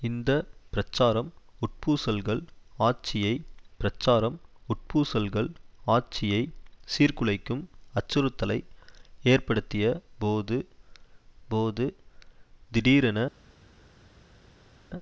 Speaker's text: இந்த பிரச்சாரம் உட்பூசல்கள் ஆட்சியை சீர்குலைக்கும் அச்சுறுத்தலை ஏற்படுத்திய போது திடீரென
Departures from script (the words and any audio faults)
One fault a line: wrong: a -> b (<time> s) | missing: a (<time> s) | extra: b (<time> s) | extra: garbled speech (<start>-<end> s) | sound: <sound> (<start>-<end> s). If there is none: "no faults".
extra: பிரச்சாரம் உட்பூசல்கள் ஆட்சியை (3.8 s)
extra: போது (11.5 s)